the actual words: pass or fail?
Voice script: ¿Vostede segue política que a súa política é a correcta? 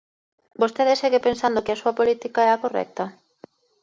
fail